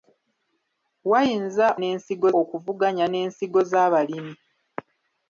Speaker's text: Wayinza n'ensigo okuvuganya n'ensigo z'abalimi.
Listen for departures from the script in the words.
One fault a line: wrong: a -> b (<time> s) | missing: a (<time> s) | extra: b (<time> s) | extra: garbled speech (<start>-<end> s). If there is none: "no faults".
no faults